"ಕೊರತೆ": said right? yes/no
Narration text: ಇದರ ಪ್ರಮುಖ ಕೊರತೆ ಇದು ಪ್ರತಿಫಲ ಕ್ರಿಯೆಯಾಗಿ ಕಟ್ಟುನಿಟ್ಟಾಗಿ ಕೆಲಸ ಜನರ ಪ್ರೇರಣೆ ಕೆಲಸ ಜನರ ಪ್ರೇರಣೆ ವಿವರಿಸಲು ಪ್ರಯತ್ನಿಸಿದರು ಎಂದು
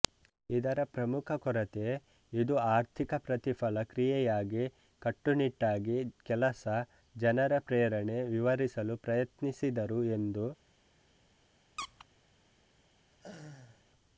yes